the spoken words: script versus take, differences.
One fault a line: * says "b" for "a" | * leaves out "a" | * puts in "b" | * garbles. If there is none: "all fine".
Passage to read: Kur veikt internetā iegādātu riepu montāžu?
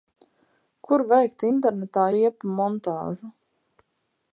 * leaves out "iegādātu"